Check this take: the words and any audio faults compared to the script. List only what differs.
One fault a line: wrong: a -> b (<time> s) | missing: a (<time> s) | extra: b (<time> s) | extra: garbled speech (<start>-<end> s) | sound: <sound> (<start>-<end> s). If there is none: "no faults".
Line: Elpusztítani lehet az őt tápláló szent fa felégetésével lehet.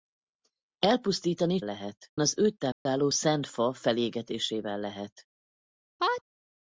sound: dropout (2.7-2.9 s)
sound: sneeze (6.0-6.2 s)